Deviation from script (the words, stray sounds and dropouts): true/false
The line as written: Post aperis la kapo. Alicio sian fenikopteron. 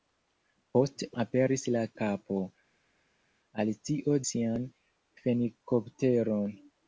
false